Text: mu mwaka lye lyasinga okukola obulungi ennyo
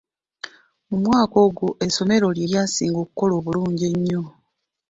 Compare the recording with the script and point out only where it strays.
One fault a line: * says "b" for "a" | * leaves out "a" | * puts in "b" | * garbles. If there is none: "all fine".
* puts in "ogwo essomero"